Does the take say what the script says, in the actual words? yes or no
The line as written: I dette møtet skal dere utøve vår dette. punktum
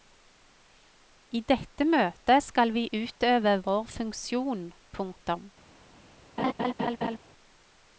no